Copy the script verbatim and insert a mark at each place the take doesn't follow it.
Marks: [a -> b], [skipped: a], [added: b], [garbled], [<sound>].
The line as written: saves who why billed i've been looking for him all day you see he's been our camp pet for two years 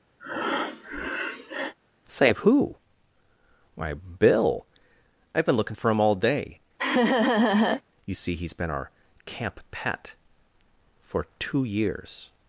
[breath] [saves -> save] who why [billed -> bill] i've been looking for him all day [laugh] you see he's been our camp pet for two years